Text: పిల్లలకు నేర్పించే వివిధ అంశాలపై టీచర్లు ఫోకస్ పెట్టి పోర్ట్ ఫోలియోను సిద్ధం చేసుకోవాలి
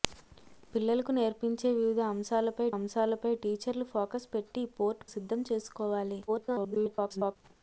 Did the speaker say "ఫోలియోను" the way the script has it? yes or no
no